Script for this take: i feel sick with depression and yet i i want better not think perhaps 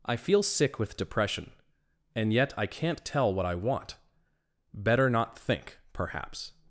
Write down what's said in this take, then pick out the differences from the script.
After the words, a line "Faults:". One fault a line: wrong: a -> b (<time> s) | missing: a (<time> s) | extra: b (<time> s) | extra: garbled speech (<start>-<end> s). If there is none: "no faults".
i feel sick with depression and yet i can't tell what i want better not think perhaps
Faults:
extra: can't tell what (2.7 s)